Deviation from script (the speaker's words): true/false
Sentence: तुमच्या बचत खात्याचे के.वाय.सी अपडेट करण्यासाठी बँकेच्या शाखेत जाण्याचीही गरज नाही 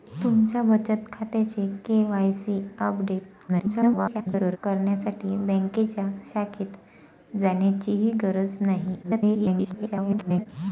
true